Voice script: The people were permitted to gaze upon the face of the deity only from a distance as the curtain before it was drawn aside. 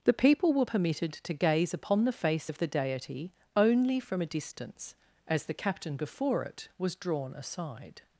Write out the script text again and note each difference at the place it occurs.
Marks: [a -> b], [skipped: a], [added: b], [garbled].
The people were permitted to gaze upon the face of the deity only from a distance as the [curtain -> captain] before it was drawn aside.